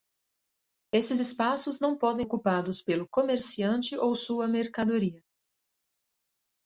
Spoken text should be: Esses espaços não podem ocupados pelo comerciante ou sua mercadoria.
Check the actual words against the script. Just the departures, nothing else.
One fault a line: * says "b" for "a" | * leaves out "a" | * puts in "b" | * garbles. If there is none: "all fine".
all fine